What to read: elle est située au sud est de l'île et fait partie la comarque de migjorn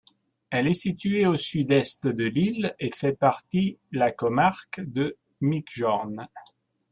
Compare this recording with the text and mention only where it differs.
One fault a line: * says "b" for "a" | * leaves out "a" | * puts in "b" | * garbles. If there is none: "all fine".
all fine